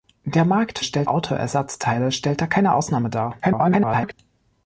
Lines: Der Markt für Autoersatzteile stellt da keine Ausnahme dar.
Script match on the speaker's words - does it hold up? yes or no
no